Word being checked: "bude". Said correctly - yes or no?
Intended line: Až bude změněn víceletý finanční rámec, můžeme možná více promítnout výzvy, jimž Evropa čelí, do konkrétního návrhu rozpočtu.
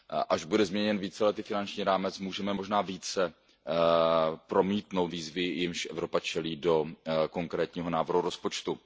yes